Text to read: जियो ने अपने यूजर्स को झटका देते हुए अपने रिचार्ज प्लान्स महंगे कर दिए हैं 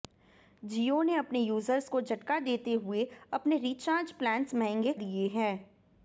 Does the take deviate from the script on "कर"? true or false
true